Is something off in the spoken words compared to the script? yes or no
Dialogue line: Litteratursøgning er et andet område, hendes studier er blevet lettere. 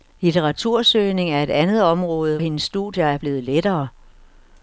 no